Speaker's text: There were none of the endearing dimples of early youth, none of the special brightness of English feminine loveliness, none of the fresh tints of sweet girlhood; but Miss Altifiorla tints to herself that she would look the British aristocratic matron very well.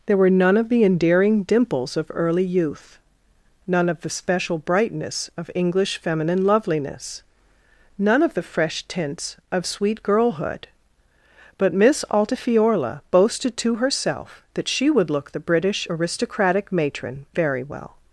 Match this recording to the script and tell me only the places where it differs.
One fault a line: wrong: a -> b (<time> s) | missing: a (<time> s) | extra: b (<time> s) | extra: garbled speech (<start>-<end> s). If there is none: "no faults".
wrong: tints -> boasted (13.1 s)